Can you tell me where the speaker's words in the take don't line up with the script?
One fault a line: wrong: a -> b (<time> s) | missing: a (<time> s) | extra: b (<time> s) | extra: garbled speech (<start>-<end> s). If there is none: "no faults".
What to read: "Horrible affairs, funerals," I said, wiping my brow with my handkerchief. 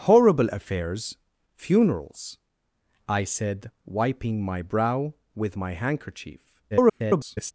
extra: garbled speech (6.7-7.5 s)